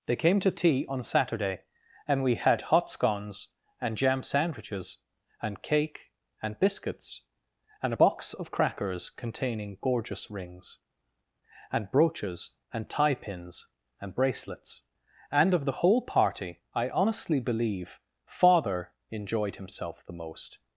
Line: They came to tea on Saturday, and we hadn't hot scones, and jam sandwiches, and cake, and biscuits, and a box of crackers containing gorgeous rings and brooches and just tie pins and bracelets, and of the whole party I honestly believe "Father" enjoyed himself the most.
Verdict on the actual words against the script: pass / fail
fail